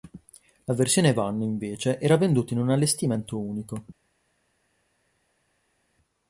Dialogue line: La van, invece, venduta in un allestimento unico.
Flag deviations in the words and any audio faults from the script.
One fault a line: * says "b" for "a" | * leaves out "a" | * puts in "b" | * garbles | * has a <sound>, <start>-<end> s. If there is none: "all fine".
* puts in "versione"
* puts in "era"